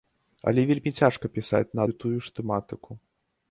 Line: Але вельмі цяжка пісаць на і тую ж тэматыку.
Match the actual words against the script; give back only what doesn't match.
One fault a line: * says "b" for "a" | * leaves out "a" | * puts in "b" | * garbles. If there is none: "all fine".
all fine